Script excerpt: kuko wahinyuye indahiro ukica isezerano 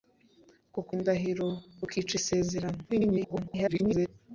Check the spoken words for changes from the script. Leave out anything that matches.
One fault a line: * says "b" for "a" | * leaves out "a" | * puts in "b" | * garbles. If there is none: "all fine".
* leaves out "wahinyuye"
* garbles